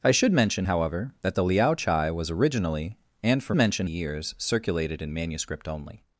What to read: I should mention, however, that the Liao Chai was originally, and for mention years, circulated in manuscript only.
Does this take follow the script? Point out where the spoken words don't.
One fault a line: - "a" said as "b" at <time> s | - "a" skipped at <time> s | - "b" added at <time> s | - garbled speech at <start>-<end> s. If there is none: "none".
none